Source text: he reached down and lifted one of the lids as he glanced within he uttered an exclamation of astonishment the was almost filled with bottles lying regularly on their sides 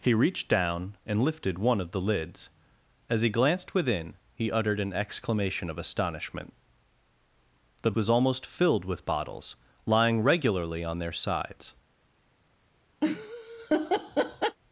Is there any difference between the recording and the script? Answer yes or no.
no